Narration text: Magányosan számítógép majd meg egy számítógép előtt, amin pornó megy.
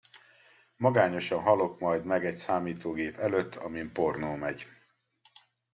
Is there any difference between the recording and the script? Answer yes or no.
yes